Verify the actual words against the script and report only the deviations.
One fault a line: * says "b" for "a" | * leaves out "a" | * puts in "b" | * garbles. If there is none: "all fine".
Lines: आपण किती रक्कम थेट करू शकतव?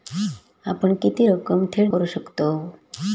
all fine